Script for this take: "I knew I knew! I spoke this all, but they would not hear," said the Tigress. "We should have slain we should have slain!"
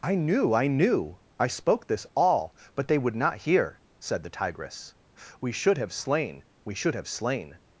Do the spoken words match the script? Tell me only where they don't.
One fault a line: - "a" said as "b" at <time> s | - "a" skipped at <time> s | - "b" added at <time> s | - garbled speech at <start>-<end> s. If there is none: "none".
none